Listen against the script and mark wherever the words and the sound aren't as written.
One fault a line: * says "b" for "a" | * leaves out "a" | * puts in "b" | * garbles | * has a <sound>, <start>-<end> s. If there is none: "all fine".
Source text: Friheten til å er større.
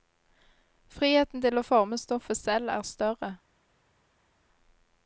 * puts in "forme stoffet selv"